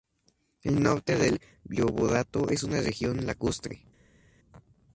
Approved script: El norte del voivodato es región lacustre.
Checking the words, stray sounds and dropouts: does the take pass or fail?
fail